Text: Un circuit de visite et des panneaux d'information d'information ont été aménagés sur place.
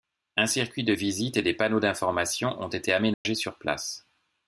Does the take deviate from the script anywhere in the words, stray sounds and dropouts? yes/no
yes